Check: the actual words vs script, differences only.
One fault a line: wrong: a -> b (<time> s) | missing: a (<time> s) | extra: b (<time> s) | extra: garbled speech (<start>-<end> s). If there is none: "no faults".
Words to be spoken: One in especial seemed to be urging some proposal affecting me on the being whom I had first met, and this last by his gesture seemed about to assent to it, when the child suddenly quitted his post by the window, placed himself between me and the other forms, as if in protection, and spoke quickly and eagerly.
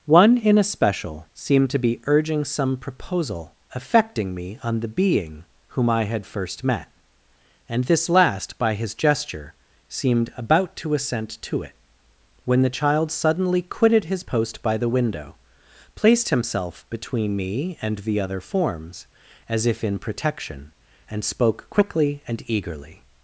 no faults